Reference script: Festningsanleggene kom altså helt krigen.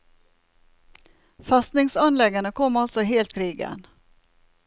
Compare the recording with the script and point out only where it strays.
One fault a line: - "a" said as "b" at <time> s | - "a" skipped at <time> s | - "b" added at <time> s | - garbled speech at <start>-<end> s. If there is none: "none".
none